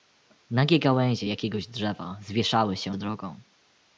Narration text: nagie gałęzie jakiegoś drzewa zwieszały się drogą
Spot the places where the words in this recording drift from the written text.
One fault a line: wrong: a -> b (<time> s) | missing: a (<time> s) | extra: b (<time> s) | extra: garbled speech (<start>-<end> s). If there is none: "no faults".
no faults